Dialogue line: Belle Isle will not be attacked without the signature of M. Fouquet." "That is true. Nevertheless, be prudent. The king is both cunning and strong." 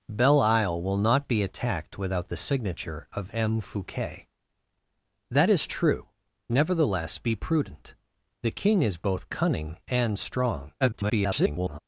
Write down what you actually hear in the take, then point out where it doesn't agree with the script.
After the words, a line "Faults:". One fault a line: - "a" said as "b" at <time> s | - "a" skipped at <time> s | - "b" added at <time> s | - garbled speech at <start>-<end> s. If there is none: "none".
Belle Isle will not be attacked without the signature of M. Fouquet." "That is true. Nevertheless, be prudent. The king is both cunning and strong." [garbled]
Faults:
- garbled speech at 10.8-11.8 s